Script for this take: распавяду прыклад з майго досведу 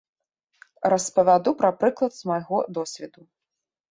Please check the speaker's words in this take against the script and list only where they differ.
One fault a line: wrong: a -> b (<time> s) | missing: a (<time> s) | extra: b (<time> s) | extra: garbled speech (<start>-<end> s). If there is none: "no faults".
extra: пра (1.6 s)